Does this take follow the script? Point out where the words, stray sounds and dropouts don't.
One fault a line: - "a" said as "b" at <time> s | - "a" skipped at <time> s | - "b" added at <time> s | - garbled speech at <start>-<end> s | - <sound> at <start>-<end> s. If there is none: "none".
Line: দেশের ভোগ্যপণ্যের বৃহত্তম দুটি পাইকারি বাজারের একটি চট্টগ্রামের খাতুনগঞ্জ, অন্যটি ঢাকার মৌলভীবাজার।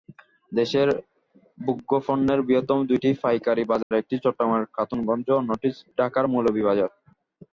- dropout at 3.8-3.9 s